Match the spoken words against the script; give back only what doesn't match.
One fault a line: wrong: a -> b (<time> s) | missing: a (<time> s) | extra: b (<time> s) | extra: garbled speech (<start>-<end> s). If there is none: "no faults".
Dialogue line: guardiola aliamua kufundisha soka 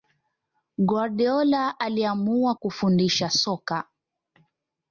no faults